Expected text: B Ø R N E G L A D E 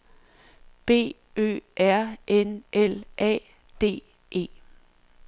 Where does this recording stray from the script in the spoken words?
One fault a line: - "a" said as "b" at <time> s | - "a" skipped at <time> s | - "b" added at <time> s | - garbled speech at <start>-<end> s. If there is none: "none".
- "E G" skipped at 2.6 s